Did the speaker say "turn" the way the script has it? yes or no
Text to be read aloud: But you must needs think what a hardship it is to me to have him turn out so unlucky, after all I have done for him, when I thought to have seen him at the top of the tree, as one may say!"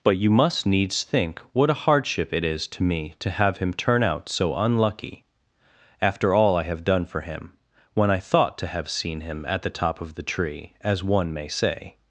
yes